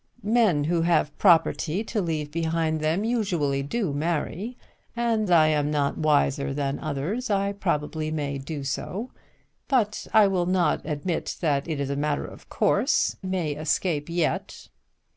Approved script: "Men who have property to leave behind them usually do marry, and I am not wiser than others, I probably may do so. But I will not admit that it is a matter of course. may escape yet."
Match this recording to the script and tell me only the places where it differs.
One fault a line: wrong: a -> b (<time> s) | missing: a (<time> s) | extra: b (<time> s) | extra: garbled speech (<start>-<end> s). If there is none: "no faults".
no faults